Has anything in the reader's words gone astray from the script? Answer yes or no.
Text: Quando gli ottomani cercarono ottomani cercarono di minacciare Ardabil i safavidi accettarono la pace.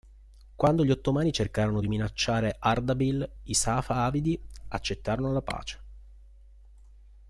yes